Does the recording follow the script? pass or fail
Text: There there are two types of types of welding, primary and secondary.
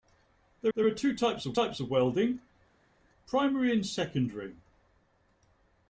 pass